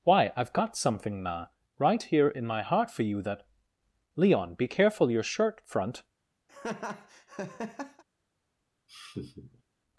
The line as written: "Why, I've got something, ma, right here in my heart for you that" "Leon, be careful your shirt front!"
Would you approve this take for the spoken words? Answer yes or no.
yes